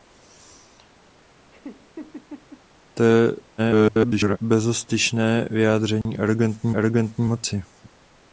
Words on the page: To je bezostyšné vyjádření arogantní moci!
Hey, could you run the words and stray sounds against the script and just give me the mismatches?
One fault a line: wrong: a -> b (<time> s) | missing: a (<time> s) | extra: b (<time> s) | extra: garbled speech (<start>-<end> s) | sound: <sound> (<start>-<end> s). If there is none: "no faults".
sound: laugh (1.5-2.6 s)
extra: garbled speech (3.6-4.4 s)
sound: dropout (6.0-6.1 s)
extra: arogantní (6.7 s)